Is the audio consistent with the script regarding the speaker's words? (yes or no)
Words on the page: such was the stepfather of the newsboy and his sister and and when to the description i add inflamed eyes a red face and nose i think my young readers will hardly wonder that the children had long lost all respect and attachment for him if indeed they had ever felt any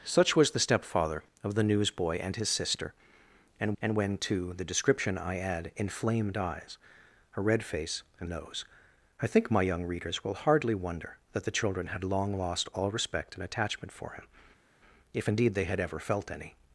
yes